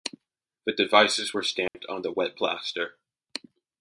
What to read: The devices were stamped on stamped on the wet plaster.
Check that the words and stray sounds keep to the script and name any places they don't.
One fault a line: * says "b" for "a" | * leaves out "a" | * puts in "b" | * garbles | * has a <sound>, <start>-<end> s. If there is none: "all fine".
* has a dropout, 1.7-1.7 s
* leaves out "stamped on"